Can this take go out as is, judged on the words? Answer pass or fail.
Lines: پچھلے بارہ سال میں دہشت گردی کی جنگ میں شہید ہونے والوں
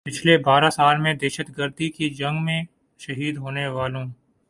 pass